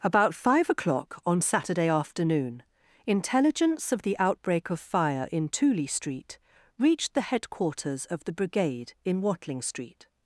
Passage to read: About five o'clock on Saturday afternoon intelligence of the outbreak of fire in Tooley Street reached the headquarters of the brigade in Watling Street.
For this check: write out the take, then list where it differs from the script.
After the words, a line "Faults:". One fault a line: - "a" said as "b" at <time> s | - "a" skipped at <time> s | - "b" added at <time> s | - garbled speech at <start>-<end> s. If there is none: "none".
About five o'clock on Saturday afternoon intelligence of the outbreak of fire in Tooley Street reached the headquarters of the brigade in Watling Street.
Faults:
none